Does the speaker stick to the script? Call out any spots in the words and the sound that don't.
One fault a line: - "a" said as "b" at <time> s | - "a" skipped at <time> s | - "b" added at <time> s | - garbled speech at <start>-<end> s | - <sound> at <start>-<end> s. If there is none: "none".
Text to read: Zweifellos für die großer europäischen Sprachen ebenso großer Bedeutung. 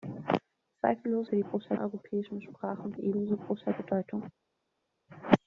none